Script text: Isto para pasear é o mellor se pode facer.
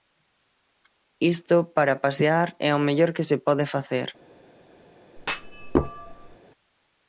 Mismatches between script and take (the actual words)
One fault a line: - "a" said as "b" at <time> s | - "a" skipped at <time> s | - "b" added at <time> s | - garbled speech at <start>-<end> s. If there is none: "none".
- "que" added at 3.1 s